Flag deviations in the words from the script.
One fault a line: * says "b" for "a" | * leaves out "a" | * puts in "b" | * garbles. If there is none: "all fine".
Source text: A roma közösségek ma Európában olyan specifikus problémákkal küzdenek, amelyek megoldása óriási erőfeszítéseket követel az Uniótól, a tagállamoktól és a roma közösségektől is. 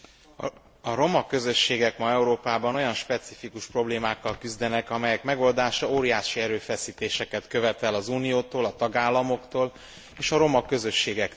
all fine